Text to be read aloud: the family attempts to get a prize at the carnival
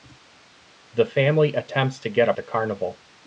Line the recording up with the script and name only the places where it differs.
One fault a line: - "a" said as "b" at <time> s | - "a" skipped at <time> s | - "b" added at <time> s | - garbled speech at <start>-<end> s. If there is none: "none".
- "prize at" skipped at 2.3 s